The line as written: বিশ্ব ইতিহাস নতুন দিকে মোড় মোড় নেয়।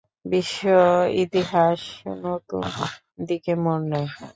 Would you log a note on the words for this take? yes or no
yes